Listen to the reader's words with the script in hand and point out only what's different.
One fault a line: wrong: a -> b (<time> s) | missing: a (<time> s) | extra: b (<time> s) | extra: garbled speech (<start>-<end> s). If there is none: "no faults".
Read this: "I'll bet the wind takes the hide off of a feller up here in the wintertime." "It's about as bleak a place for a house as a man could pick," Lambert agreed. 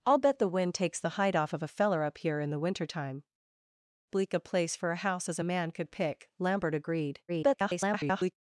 missing: It's about as (3.2 s)
extra: garbled speech (7.3-8.3 s)